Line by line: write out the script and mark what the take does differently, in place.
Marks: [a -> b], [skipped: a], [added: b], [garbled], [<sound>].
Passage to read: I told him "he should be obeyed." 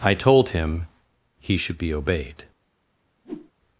I told him "he should be obeyed." [whoosh]